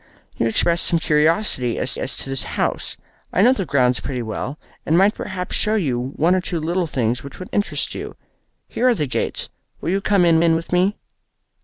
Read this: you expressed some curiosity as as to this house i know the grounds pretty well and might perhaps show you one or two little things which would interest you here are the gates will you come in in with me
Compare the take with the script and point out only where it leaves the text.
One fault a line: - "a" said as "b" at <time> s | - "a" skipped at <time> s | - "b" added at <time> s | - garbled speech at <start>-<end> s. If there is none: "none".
none